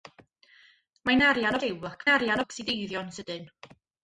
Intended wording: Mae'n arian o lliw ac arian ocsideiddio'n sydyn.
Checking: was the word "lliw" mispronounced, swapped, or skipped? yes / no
no